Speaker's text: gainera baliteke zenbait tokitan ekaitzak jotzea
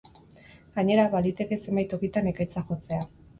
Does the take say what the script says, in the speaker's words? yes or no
yes